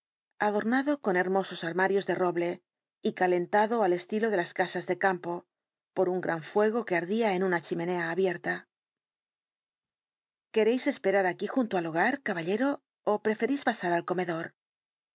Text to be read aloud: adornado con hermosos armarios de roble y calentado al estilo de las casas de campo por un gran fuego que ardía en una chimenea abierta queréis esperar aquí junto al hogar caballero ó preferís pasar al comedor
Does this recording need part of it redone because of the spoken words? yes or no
no